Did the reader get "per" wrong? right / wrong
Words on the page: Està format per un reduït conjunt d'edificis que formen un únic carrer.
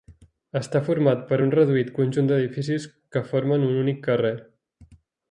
right